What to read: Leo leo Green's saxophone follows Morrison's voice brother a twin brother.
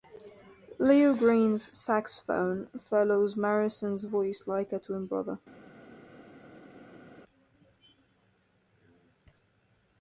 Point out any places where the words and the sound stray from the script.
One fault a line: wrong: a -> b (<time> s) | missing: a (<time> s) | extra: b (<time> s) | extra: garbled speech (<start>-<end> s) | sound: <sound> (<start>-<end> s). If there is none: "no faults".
missing: leo (1.1 s)
wrong: brother -> like (4.5 s)